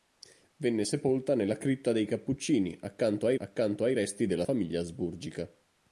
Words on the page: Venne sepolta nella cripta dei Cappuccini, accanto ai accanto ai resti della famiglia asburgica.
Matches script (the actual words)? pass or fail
pass